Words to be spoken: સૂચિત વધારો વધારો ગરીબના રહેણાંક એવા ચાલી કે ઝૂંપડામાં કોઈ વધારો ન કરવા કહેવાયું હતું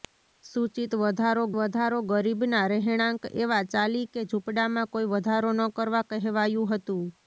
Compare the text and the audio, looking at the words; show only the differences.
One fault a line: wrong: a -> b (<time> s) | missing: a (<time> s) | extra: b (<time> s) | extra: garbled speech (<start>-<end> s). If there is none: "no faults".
no faults